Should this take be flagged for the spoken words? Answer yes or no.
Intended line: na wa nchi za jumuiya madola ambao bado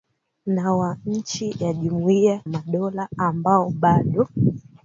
no